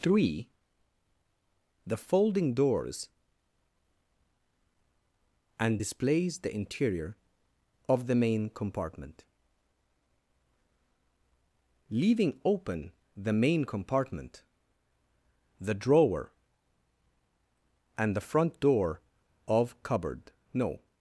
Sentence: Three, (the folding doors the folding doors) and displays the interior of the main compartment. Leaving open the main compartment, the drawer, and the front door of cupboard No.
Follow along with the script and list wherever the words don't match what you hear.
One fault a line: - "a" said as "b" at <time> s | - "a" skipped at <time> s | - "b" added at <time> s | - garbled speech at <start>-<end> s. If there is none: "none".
- "the folding doors" skipped at 3.1 s